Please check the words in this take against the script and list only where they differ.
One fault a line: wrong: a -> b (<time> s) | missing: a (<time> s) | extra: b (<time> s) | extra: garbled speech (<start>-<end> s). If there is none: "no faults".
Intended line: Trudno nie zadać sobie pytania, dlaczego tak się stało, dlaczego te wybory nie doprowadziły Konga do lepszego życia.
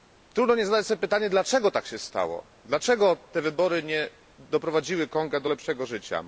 no faults